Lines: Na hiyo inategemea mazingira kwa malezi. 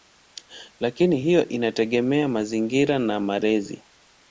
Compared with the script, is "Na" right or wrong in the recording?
wrong